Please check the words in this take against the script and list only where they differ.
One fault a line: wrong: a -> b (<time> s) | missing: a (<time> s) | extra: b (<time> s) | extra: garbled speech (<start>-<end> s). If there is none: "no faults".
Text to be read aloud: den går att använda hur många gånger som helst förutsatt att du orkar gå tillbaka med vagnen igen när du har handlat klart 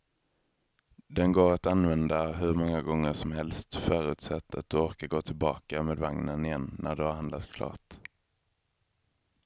no faults